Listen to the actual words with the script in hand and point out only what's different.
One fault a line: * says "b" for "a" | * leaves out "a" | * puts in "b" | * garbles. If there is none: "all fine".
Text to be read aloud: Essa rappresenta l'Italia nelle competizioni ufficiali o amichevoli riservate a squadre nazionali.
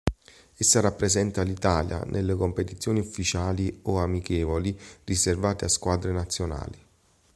all fine